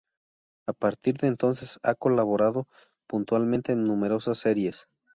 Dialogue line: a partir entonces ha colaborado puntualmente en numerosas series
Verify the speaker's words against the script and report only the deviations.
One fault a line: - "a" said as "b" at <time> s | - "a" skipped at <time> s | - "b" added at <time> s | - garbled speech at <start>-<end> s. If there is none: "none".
- "de" added at 1.2 s